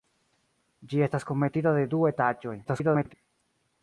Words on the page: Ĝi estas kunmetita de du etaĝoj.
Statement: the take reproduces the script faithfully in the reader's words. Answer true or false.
false